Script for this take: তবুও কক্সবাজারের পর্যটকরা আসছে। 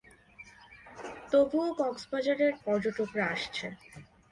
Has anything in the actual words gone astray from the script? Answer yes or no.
no